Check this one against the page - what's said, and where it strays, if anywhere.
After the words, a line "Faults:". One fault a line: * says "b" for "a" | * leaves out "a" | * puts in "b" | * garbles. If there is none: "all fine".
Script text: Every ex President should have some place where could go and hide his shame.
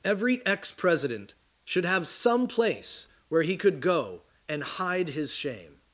Every ex President should have some place where he could go and hide his shame.
Faults:
* puts in "he"